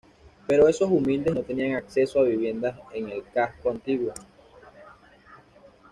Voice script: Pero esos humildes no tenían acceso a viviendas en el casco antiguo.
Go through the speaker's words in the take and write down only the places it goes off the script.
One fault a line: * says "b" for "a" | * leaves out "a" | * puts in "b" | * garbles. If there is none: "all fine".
all fine